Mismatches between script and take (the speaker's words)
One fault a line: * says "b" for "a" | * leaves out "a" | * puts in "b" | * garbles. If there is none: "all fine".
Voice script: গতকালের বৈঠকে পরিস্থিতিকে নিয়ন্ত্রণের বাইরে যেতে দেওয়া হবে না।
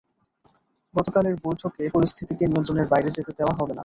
all fine